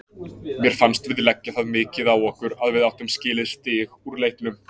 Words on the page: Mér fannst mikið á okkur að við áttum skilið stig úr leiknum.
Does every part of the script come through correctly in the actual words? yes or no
no